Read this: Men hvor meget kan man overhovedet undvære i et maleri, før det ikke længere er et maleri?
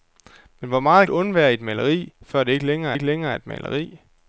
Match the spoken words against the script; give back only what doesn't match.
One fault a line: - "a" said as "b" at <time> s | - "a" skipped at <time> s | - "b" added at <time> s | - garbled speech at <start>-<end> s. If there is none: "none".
- "kan man overhovedet" skipped at 1.1 s
- "ikke længere" added at 2.9 s